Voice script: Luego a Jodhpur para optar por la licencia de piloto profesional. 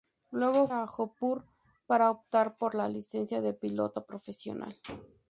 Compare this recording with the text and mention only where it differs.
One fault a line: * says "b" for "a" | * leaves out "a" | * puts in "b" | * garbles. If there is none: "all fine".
all fine